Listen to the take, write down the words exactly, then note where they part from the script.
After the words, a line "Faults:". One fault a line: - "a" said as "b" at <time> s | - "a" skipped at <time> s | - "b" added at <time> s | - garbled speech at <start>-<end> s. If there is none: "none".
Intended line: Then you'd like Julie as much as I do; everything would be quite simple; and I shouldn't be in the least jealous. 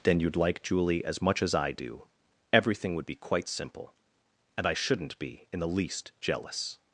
Then you'd like Julie as much as I do; everything would be quite simple; and I shouldn't be in the least jealous.
Faults:
none